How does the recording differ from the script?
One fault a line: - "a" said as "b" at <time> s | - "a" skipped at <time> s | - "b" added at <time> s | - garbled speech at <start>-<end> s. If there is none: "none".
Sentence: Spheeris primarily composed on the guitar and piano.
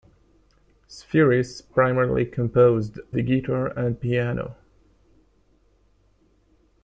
- "on" skipped at 3.0 s